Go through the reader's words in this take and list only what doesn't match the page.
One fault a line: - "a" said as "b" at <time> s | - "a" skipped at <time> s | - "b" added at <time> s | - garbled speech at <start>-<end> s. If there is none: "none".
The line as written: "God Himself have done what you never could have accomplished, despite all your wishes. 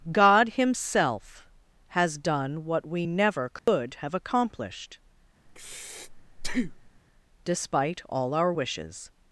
- "have" said as "has" at 1.9 s
- "you" said as "we" at 2.9 s
- "your" said as "our" at 8.3 s